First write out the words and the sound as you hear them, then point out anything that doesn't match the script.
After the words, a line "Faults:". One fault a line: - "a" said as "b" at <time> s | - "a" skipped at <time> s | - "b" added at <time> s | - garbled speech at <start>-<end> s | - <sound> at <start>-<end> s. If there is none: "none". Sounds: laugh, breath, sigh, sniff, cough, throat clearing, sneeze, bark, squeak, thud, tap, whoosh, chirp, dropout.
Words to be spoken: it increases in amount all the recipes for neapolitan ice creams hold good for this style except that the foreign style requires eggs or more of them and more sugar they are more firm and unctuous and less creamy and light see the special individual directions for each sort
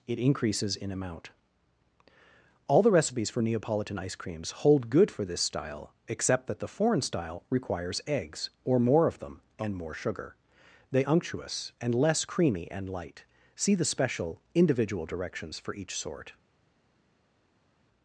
it increases in amount all the recipes for neapolitan ice creams hold good for this style except that the foreign style requires eggs or more of them and more sugar they unctuous and less creamy and light see the special individual directions for each sort
Faults:
- "are more firm and" skipped at 11.0 s